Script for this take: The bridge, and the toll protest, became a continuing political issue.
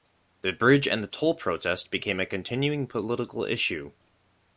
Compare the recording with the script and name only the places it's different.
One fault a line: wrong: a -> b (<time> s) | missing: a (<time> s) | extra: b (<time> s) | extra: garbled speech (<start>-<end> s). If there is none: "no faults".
no faults